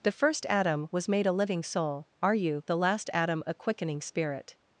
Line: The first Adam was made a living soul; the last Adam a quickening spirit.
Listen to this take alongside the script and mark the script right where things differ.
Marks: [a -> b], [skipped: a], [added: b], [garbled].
The first Adam was made a living soul; [added: are you] the last Adam a quickening spirit.